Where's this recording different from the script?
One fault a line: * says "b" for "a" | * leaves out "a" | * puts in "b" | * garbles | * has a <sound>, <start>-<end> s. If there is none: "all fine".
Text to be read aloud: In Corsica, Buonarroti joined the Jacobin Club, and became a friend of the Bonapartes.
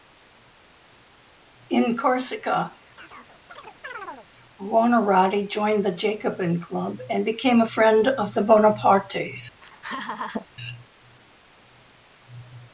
* has a chirp, 3.0-4.3 s
* has a laugh, 9.6-10.5 s